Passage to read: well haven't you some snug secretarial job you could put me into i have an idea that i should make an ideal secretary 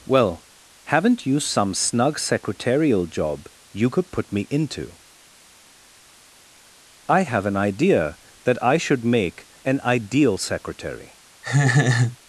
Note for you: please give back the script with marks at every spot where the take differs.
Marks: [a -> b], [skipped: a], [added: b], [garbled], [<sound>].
well haven't you some snug secretarial job you could put me into i have an idea that i should make an ideal secretary [laugh]